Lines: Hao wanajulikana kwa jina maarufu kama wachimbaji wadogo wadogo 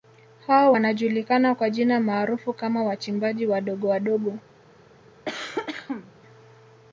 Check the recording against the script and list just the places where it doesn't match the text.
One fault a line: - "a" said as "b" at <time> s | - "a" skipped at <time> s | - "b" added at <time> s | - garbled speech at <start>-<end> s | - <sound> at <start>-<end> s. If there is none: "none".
- cough at 5.3-6.1 s